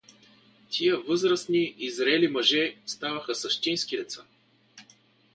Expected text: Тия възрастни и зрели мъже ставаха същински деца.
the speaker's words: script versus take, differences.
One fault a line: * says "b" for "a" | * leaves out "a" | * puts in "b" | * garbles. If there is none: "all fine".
all fine